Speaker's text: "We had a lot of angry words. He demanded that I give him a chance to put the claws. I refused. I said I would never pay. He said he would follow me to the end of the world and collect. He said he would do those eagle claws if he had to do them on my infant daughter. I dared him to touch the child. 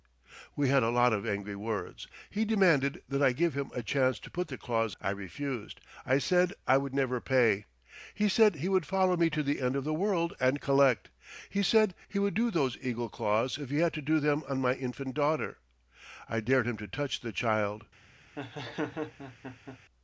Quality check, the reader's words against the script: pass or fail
pass